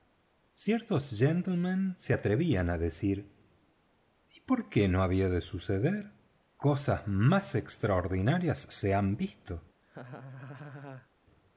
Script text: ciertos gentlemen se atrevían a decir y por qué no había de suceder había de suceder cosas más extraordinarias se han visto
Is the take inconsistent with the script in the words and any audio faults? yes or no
yes